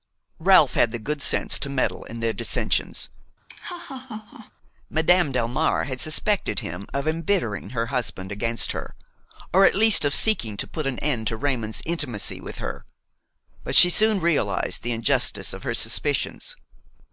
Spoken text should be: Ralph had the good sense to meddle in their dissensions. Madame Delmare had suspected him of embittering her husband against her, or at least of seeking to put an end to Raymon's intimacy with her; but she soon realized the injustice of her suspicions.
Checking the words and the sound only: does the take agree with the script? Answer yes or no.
no